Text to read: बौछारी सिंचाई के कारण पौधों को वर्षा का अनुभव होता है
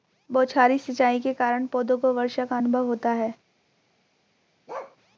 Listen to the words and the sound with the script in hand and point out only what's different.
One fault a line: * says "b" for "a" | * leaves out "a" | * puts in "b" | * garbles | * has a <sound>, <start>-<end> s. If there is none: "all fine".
* has a bark, 4.7-5.0 s